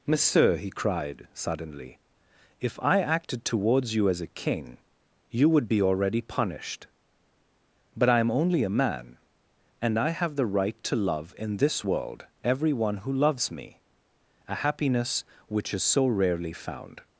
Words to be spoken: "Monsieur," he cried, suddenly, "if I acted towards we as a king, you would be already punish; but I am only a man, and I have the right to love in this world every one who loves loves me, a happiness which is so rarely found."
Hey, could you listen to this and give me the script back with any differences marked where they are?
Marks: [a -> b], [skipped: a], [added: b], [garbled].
"Monsieur," he cried, suddenly, "if I acted towards [we -> you] as a king, you would be already [punish; -> punished] but I am only a man, and I have the right to love in this world every one who loves [skipped: loves] me, a happiness which is so rarely found."